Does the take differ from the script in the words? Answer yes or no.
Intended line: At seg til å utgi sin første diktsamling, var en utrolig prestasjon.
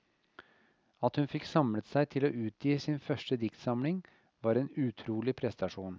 yes